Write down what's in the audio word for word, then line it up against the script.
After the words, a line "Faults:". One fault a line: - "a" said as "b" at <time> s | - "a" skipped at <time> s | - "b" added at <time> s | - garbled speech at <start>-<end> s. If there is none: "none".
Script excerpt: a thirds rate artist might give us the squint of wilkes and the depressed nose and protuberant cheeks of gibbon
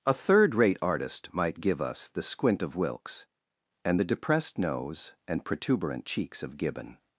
a third rate artist might give us the squint of wilkes and the depressed nose and protuberant cheeks of gibbon
Faults:
- "thirds" said as "third" at 0.1 s